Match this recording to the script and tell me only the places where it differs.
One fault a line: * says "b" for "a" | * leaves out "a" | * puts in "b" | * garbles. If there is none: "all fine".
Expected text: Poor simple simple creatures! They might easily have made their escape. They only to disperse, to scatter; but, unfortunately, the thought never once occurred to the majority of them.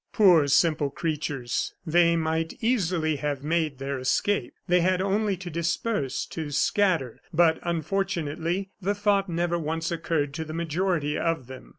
* leaves out "simple"
* puts in "had"